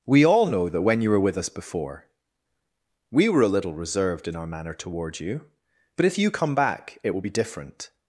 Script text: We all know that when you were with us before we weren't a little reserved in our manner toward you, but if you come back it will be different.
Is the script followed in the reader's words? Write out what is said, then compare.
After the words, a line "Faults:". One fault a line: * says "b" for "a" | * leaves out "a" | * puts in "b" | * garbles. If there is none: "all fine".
We all know that when you were with us before we were a little reserved in our manner toward you, but if you come back it will be different.
Faults:
* says "were" for "weren't"